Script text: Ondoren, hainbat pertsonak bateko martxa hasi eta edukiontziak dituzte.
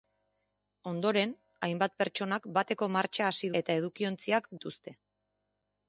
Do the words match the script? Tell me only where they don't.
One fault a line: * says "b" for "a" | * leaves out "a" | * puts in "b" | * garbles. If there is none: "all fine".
all fine